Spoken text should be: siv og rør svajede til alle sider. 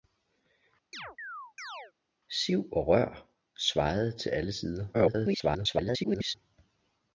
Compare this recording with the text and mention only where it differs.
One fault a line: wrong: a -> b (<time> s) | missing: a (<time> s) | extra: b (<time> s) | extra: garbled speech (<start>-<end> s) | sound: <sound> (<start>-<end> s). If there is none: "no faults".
sound: chirp (0.9-1.9 s)
extra: garbled speech (4.9-6.3 s)